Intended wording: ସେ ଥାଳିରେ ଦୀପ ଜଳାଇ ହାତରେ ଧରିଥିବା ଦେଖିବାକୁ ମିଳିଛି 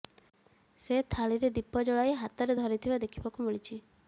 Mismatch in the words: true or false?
false